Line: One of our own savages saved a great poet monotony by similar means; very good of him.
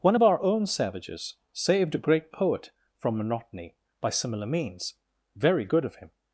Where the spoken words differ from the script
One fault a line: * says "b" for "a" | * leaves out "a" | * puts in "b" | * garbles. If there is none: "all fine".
* puts in "from"